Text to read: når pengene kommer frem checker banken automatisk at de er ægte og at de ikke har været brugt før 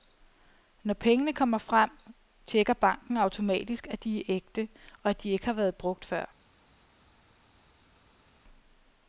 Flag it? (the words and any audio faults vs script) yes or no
no